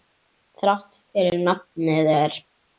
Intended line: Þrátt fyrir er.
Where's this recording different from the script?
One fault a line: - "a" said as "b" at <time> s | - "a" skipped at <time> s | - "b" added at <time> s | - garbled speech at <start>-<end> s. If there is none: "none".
- "nafnið" added at 1.4 s